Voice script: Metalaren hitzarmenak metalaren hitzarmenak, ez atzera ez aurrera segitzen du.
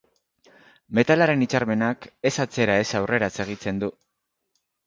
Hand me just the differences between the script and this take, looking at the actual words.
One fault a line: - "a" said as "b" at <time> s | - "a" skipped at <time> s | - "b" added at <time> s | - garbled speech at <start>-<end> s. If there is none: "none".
- "metalaren hitzarmenak" skipped at 2.1 s